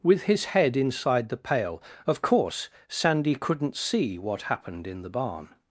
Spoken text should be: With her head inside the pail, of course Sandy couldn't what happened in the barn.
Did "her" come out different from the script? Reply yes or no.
yes